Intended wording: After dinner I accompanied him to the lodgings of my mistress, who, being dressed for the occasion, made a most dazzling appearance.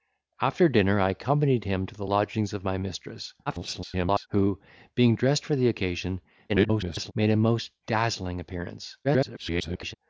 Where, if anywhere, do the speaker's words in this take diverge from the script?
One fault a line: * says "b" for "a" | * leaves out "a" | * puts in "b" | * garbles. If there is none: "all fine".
* garbles
* garbles
* garbles